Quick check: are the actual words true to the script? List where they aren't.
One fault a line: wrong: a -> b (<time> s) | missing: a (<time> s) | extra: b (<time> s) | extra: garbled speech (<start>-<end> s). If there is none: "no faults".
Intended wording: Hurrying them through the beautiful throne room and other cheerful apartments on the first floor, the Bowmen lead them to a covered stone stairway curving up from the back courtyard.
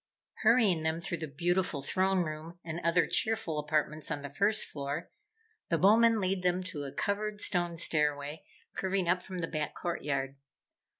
no faults